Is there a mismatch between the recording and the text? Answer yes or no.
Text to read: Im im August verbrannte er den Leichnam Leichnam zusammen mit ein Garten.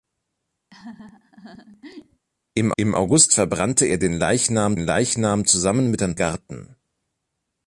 no